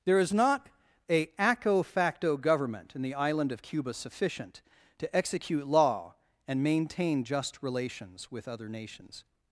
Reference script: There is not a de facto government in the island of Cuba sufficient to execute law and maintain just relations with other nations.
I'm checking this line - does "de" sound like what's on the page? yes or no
no